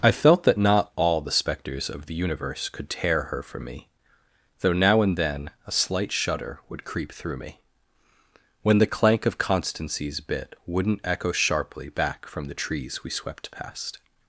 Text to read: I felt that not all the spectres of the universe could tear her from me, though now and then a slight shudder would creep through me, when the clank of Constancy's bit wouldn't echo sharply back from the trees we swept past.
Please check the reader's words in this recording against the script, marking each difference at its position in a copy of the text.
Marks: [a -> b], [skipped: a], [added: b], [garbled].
I felt that not all the spectres of the universe could tear her from me, though now and then a slight shudder would creep through me, when the clank of Constancy's bit wouldn't echo sharply back from the trees we swept past.